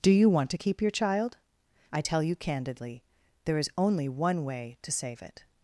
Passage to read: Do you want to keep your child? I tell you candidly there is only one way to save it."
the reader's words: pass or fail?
pass